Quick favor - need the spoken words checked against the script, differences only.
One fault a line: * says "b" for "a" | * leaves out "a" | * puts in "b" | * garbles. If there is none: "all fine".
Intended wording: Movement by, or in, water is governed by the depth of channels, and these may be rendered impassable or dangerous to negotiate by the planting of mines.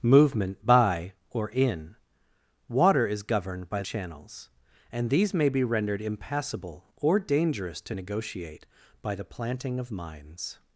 * leaves out "the depth of"